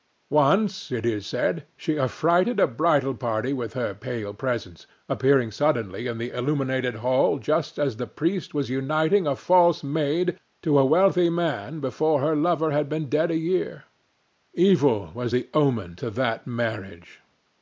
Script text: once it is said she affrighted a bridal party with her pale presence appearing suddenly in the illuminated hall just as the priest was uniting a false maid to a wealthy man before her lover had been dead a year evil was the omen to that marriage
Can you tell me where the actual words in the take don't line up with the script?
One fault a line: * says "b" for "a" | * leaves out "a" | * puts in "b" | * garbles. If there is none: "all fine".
all fine